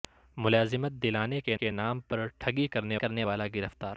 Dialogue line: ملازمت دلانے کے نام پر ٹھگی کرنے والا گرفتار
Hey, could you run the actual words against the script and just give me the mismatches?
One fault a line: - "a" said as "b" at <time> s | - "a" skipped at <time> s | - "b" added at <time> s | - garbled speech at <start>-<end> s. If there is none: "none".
- "کے" added at 1.5 s
- "کرنے" added at 2.9 s